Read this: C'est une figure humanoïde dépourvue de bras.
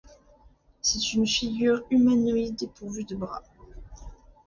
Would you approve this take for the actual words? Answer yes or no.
yes